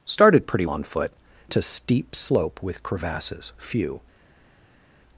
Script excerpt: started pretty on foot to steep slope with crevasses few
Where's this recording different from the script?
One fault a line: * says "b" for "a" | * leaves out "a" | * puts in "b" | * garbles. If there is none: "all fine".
all fine